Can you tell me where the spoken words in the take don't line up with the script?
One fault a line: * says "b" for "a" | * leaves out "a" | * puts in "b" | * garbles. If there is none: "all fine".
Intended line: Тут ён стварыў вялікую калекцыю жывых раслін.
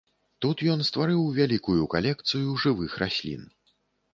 all fine